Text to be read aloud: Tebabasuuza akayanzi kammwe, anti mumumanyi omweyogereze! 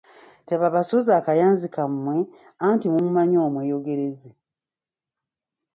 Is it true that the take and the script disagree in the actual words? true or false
false